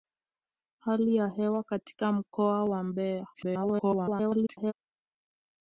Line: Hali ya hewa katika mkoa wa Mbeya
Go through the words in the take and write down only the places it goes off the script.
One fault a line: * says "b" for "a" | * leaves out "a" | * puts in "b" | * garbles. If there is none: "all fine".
* garbles